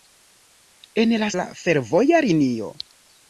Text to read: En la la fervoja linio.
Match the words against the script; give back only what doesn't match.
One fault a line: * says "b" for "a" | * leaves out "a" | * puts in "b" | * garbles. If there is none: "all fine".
all fine